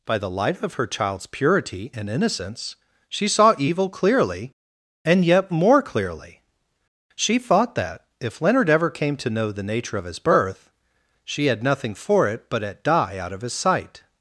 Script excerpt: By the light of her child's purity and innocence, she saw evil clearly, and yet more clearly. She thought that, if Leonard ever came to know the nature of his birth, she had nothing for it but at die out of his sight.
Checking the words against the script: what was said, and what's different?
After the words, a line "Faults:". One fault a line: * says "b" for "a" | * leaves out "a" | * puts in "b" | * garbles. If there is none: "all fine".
By the light of her child's purity and innocence, she saw evil clearly, and yet more clearly. She thought that, if Leonard ever came to know the nature of his birth, she had nothing for it but at die out of his sight.
Faults:
all fine